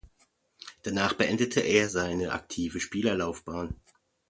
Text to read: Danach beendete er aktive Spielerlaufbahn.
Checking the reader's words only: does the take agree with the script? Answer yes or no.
no